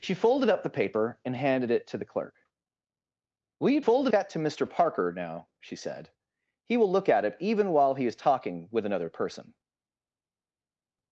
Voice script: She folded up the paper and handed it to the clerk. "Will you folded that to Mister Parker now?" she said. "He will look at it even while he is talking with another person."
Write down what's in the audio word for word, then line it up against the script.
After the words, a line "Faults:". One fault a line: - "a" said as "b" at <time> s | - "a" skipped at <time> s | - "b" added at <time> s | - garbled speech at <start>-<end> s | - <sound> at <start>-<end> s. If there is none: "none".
She folded up the paper and handed it to the clerk. "Will you folded that to Mister Parker now?" she said. "He will look at it even while he is talking with another person."
Faults:
none